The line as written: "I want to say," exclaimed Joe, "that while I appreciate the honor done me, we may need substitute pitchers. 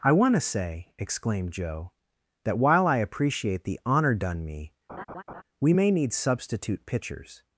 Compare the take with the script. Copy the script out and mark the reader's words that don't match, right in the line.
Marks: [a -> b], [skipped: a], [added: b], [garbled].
"I want to say," exclaimed Joe, "that while I appreciate the honor done me, we may need substitute pitchers.